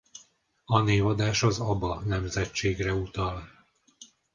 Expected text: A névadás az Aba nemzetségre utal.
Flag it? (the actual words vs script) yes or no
no